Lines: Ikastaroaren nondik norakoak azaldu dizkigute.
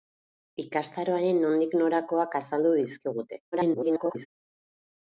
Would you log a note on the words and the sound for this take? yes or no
yes